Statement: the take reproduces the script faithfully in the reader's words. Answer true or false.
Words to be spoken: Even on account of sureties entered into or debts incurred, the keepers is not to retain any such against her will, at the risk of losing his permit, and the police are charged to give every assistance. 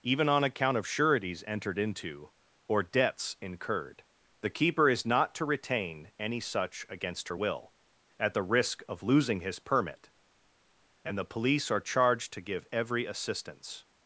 false